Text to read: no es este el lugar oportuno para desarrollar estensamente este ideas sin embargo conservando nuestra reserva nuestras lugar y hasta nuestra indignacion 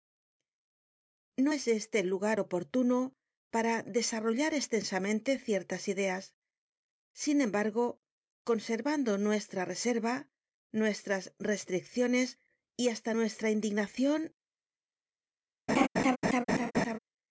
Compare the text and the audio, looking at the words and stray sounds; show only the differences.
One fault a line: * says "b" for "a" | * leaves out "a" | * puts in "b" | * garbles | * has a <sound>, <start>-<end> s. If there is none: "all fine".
* says "ciertas" for "este"
* says "restricciones" for "lugar"
* has a laugh, 15.7-17.0 s